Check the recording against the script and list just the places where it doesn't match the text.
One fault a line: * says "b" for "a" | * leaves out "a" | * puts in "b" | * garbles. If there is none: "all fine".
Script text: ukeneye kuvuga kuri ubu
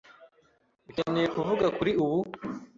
all fine